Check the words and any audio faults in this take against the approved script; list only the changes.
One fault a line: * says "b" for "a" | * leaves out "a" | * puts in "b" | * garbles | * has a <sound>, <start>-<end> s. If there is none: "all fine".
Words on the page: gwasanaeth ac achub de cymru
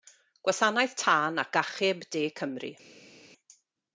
* puts in "tân"